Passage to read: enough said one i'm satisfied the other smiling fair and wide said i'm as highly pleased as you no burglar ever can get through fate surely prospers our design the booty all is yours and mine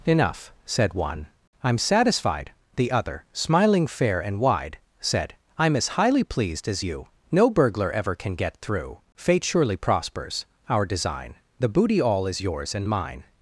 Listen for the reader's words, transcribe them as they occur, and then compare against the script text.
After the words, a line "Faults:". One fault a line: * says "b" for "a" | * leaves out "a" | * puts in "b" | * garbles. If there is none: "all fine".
enough said one i'm satisfied the other smiling fair and wide said i'm as highly pleased as you no burglar ever can get through fate surely prospers our design the booty all is yours and mine
Faults:
all fine